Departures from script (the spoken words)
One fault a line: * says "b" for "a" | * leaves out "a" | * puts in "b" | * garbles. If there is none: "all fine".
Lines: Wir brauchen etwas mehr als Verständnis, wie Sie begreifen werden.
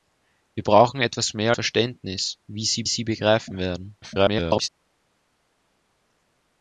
* leaves out "als"
* puts in "Sie"
* garbles